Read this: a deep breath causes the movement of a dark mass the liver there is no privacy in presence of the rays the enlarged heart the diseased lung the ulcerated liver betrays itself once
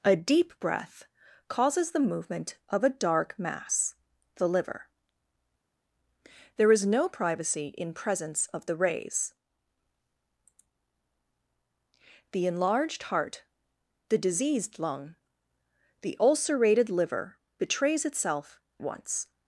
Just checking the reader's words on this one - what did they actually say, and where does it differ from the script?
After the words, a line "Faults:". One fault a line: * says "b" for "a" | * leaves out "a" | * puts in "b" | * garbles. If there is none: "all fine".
a deep breath causes the movement of a dark mass the liver there is no privacy in presence of the rays the enlarged heart the diseased lung the ulcerated liver betrays itself once
Faults:
all fine